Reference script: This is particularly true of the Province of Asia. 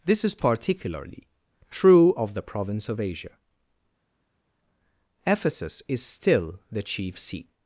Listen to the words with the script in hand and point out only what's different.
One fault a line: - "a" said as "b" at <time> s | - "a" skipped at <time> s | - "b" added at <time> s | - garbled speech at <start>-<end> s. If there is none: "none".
- "Ephesus is still the chief seat" added at 5.3 s